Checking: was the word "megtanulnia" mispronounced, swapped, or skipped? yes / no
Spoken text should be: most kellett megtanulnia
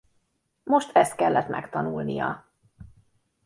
no